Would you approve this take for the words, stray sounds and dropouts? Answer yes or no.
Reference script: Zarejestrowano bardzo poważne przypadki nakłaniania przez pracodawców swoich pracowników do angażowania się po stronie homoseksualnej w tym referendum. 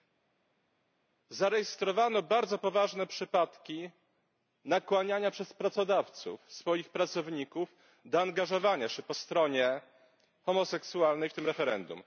yes